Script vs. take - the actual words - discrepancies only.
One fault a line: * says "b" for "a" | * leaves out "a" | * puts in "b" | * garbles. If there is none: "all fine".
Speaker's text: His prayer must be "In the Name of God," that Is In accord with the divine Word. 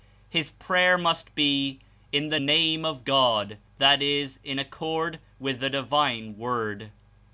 all fine